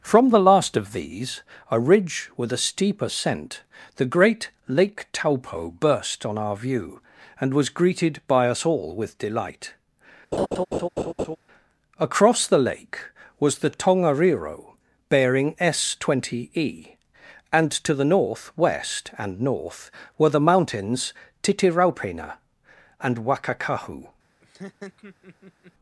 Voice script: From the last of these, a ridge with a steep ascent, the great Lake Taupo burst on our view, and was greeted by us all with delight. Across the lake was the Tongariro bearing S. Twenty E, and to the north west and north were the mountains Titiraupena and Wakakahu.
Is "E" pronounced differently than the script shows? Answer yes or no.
no